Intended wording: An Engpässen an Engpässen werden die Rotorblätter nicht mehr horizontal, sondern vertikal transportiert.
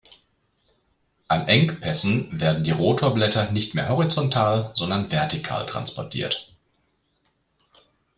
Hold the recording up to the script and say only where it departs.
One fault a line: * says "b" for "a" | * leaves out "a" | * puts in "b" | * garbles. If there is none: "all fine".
* leaves out "an Engpässen"